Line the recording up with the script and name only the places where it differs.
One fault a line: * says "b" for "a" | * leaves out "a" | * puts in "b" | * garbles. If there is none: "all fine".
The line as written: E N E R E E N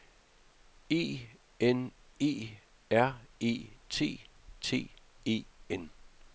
* puts in "T T"